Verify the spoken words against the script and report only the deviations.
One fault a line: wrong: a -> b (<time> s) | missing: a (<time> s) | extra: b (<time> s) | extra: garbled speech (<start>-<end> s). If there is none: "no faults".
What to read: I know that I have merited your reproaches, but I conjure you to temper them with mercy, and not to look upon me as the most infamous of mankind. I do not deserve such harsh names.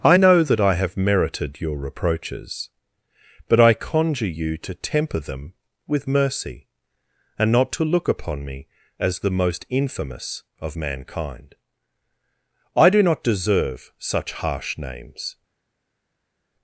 no faults